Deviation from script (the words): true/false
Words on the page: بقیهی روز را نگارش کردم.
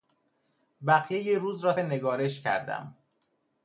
false